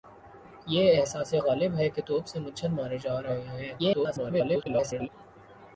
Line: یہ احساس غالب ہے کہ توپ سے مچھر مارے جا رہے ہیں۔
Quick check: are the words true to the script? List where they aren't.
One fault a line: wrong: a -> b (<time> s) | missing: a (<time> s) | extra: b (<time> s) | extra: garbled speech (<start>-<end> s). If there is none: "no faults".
extra: garbled speech (3.8-5.1 s)